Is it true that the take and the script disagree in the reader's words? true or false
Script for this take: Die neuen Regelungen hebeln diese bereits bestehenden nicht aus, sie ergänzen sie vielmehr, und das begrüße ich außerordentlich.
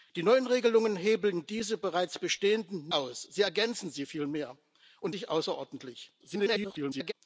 true